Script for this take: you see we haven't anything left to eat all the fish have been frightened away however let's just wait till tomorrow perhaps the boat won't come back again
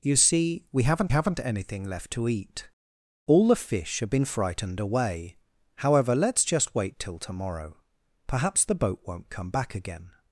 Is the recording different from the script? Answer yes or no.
yes